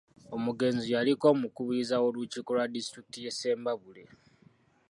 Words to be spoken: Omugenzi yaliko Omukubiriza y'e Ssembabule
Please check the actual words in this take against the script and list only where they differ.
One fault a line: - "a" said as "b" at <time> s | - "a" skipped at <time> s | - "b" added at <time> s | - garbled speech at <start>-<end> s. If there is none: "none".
- "w'olukiiko lwa disitulikiti" added at 2.0 s